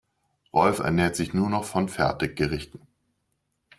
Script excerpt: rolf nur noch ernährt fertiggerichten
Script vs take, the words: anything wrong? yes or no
yes